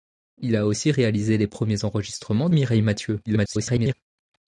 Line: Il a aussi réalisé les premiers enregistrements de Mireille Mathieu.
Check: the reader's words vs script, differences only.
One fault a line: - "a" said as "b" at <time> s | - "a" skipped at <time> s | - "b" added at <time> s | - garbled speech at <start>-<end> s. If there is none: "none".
- "de" skipped at 2.5 s
- garbled speech at 3.3-3.9 s